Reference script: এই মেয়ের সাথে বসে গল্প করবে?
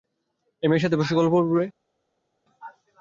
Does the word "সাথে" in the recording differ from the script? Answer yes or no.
no